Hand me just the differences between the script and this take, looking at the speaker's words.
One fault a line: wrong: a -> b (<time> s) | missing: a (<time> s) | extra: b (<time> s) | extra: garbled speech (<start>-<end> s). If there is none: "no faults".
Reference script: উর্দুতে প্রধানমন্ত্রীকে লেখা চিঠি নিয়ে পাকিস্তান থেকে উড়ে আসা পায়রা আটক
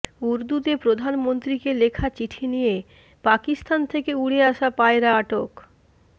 no faults